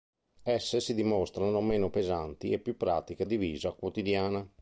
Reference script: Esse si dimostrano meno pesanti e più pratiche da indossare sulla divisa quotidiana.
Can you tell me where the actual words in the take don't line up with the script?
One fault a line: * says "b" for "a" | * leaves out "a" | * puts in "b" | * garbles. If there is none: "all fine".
* leaves out "da indossare sulla"